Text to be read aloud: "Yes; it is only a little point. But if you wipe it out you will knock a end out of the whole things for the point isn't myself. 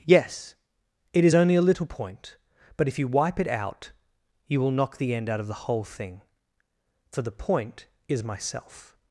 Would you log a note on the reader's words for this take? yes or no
yes